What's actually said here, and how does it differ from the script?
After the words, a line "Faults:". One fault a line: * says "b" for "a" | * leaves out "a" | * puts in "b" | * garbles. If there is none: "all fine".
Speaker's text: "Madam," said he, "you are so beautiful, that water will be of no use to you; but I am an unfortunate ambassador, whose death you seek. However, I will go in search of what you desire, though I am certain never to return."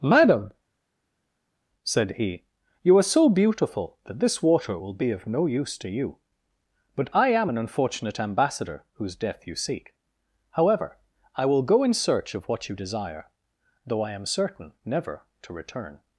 "Madam," said he, "you are so beautiful, that this water will be of no use to you; but I am an unfortunate ambassador, whose death you seek. However, I will go in search of what you desire, though I am certain never to return."
Faults:
* puts in "this"